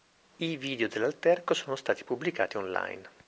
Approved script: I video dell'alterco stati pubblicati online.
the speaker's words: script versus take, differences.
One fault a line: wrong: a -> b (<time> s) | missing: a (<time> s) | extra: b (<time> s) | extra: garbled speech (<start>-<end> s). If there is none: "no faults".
extra: sono (1.5 s)